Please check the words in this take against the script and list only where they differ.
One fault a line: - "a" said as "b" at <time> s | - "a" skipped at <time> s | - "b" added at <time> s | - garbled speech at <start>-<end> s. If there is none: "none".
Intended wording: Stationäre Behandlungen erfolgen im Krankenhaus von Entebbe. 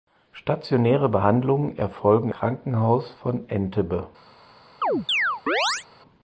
- "im" skipped at 2.3 s